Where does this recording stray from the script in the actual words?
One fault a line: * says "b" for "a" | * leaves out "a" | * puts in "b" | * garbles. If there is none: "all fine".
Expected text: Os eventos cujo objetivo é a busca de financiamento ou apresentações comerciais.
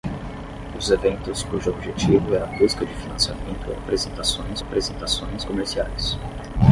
* puts in "apresentações"